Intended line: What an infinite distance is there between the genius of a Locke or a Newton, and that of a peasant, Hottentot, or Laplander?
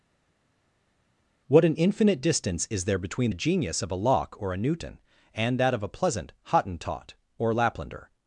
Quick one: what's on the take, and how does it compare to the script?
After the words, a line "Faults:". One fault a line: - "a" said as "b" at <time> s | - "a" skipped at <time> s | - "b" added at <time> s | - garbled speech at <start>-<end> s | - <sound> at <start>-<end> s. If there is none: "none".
What an infinite distance is there between the genius of a Locke or a Newton, and that of a pleasant, Hottentot, or Laplander?
Faults:
- "peasant" said as "pleasant" at 5.9 s